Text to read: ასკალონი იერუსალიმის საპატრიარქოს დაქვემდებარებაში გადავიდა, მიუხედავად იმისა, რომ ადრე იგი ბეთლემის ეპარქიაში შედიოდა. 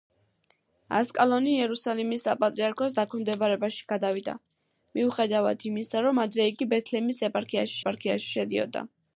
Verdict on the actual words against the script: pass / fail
fail